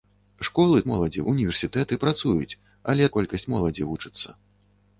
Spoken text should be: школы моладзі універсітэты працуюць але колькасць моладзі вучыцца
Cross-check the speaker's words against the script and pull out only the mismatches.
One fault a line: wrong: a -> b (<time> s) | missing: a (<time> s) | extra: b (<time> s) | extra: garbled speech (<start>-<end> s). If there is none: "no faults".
no faults